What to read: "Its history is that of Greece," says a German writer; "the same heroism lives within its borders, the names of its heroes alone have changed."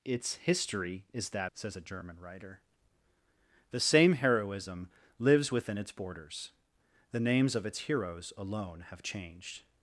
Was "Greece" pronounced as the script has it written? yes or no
no